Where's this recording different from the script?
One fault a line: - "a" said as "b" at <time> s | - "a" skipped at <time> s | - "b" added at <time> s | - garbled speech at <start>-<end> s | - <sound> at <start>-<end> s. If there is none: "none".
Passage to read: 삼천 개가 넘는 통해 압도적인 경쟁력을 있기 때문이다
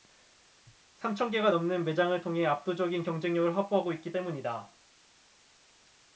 - "매장을" added at 1.8 s
- "확보하고" added at 3.5 s